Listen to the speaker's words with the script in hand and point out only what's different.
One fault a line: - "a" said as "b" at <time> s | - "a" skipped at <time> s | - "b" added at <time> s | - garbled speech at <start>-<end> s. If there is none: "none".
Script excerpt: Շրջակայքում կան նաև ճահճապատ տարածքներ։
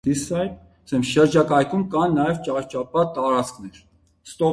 none